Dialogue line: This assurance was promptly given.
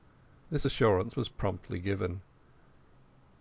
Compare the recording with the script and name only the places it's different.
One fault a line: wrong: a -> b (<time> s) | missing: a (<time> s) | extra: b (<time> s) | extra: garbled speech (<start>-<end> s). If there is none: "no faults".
no faults